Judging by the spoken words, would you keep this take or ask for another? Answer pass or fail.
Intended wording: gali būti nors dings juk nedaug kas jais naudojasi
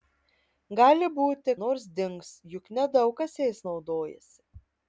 pass